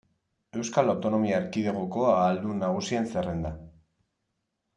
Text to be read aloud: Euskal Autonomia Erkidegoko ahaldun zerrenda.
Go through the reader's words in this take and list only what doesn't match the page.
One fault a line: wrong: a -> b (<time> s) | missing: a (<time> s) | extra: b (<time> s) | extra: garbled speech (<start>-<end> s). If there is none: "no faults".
extra: nagusien (2.6 s)